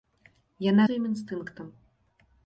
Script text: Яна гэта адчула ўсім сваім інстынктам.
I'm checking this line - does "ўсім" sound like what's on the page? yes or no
no